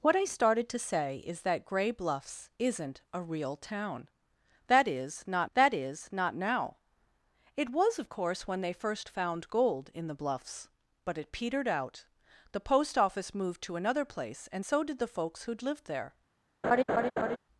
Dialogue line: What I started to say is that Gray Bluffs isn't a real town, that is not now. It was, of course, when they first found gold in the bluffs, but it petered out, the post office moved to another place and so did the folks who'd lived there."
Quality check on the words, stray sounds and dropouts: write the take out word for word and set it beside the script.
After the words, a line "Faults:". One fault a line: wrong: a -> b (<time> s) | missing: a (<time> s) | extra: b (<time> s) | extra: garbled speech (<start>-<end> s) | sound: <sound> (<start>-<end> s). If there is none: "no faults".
What I started to say is that Gray Bluffs isn't a real town, that is not that is not now. It was, of course, when they first found gold in the bluffs, but it petered out, the post office moved to another place and so did the folks who'd lived there."
Faults:
extra: that is not (5.5 s)
sound: laugh (16.6-17.4 s)